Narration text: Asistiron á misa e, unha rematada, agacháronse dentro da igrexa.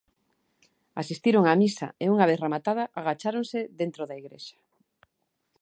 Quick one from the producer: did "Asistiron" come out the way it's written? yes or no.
yes